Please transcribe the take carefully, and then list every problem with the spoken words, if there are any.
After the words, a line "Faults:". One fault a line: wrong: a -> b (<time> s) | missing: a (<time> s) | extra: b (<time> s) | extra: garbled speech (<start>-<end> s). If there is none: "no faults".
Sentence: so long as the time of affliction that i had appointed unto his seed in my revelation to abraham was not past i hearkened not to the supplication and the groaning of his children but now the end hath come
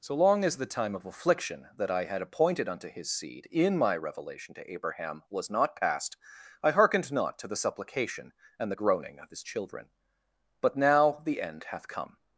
so long as the time of affliction that i had appointed unto his seed in my revelation to abraham was not past i hearkened not to the supplication and the groaning of his children but now the end hath come
Faults:
no faults